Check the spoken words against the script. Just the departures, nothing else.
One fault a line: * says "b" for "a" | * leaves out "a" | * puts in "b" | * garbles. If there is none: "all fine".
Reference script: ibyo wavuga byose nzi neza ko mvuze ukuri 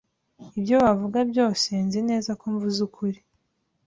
all fine